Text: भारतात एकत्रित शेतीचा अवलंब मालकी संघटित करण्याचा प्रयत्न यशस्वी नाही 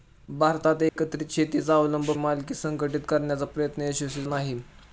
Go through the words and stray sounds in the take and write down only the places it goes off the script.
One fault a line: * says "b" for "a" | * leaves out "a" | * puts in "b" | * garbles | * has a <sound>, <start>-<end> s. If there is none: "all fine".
* has a dropout, 0.9-1.0 s